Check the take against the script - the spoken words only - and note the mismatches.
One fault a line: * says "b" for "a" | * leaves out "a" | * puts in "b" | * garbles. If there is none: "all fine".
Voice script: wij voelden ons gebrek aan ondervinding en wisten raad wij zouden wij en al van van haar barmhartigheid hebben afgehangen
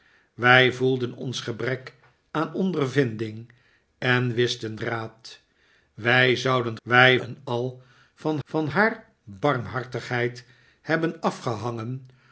all fine